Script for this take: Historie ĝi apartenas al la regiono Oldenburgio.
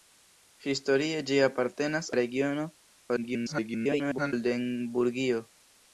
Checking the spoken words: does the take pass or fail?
fail